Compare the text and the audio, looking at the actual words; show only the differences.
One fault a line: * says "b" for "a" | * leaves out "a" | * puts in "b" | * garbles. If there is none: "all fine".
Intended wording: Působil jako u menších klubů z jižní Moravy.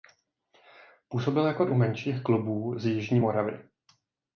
all fine